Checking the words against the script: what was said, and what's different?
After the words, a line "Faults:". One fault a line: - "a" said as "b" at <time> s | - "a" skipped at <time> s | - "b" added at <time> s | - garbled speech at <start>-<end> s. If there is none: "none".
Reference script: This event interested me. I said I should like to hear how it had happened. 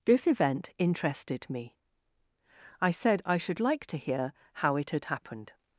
This event interested me. I said I should like to hear how it had happened.
Faults:
none